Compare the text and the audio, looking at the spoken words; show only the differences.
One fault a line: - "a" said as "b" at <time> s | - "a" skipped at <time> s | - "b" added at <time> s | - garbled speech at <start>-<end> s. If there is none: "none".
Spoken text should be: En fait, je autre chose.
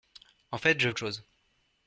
none